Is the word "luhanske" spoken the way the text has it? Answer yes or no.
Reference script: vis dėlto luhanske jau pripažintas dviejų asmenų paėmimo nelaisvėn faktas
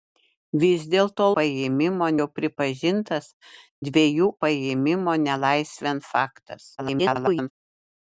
no